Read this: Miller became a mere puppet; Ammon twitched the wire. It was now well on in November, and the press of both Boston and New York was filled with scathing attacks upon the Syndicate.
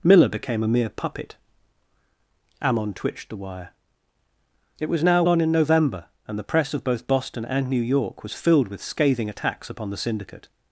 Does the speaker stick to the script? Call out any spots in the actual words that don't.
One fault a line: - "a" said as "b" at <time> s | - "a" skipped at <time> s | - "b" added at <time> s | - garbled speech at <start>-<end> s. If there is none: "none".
- "well" skipped at 5.2 s